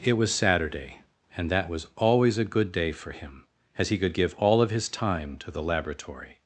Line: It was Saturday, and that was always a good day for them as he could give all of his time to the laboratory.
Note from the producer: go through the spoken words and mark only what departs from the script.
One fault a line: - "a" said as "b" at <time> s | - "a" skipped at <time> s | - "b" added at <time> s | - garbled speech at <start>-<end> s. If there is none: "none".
- "them" said as "him" at 3.1 s